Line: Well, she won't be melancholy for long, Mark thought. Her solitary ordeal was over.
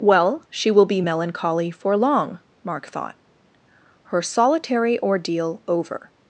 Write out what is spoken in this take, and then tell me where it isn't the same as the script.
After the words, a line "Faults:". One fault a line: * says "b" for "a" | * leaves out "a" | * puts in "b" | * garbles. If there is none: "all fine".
Well, she will be melancholy for long, Mark thought. Her solitary ordeal over.
Faults:
* says "will" for "won't"
* leaves out "was"